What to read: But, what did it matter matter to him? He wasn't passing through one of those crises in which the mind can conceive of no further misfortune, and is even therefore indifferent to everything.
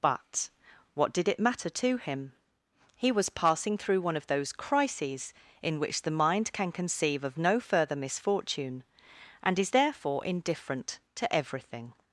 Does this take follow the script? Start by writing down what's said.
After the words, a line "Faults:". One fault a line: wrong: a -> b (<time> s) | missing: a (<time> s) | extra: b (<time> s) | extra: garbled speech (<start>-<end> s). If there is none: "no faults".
But, what did it matter to him? He was passing through one of those crises in which the mind can conceive of no further misfortune, and is therefore indifferent to everything.
Faults:
missing: matter (1.7 s)
wrong: wasn't -> was (3.1 s)
missing: even (9.7 s)